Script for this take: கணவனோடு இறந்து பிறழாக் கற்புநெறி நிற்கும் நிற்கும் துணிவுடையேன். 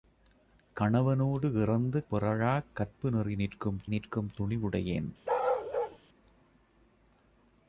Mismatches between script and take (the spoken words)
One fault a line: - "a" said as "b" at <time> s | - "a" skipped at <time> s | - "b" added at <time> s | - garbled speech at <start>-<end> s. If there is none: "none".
none